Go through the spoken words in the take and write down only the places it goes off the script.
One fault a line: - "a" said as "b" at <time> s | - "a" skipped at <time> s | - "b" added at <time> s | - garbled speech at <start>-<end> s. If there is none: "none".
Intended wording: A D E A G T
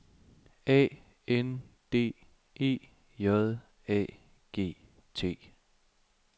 - "N" added at 1.3 s
- "J" added at 3.2 s